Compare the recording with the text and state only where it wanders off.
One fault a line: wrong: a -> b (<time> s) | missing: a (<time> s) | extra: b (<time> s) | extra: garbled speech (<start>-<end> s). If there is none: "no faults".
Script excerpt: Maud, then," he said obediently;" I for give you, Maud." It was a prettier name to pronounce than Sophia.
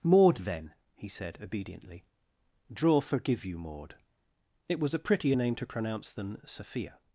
wrong: I for give -> draw forgive (2.7 s)